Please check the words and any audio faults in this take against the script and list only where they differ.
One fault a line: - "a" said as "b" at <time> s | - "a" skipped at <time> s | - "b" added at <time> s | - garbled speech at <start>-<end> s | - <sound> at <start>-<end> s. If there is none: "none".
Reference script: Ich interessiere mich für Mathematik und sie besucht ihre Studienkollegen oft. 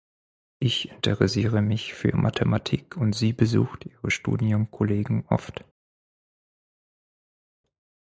none